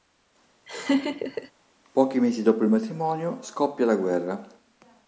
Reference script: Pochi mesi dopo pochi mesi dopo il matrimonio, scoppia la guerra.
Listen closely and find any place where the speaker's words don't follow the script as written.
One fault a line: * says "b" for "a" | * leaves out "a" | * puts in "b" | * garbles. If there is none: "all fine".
* leaves out "pochi mesi dopo"